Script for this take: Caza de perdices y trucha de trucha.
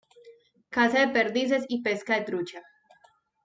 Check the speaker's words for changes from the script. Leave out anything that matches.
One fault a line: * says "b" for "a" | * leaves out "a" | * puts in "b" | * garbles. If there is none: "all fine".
* says "pesca" for "trucha"